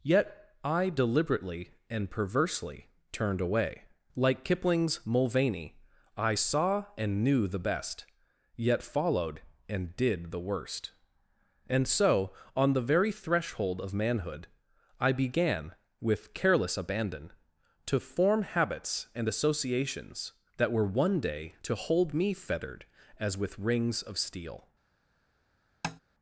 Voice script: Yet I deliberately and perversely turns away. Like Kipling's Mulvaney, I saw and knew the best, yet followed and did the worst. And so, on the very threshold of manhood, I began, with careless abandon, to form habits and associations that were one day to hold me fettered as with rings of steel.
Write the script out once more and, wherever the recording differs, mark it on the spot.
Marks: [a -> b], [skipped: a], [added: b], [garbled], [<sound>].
Yet I deliberately and perversely [turns -> turned] away. Like Kipling's Mulvaney, I saw and knew the best, yet followed and did the worst. And so, on the very threshold of manhood, I began, with careless abandon, to form habits and associations that were one day to hold me fettered as with rings of steel. [tap]